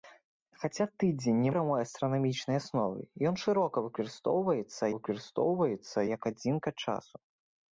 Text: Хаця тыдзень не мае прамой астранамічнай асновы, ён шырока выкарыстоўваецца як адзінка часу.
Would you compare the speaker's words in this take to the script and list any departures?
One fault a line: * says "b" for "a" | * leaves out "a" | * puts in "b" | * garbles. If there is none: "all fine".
* leaves out "мае"
* puts in "выкарыстоўваецца"